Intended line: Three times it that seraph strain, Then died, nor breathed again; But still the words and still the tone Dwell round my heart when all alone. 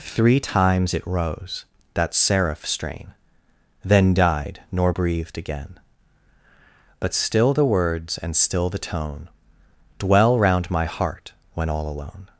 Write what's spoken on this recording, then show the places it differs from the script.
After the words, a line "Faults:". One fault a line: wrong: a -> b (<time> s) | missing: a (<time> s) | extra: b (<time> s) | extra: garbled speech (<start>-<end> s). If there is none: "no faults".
Three times it rose, that seraph strain, Then died, nor breathed again; But still the words and still the tone Dwell round my heart when all alone.
Faults:
extra: rose (1.1 s)